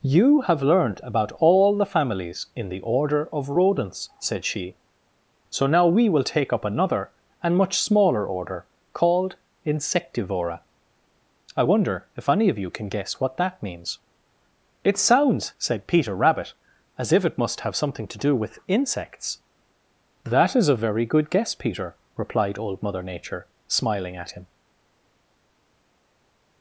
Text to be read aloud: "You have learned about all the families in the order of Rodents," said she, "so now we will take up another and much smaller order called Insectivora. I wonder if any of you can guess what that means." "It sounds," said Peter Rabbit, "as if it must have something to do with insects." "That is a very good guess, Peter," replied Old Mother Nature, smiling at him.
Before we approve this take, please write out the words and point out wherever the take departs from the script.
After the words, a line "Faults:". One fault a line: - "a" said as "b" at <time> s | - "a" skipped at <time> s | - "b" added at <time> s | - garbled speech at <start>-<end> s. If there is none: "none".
"You have learned about all the families in the order of Rodents," said she, "so now we will take up another and much smaller order called Insectivora. I wonder if any of you can guess what that means." "It sounds," said Peter Rabbit, "as if it must have something to do with insects." "That is a very good guess, Peter," replied Old Mother Nature, smiling at him.
Faults:
none